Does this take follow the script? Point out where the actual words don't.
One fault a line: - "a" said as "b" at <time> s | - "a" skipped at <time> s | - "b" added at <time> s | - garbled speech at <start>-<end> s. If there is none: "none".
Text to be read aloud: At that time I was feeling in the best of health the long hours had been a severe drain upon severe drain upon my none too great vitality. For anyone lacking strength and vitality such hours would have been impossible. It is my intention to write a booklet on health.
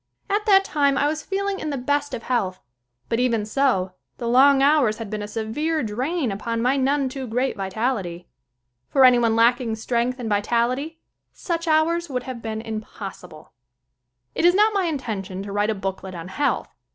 - "but even so" added at 3.1 s
- "severe drain upon" skipped at 6.6 s
- "not" added at 14.5 s